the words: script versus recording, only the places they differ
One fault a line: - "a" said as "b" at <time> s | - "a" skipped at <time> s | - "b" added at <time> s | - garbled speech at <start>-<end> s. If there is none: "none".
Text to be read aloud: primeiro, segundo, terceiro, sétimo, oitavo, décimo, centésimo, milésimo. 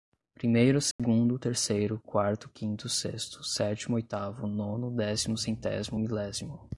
- "quarto quinto sexto" added at 2.0 s
- "nono" added at 4.5 s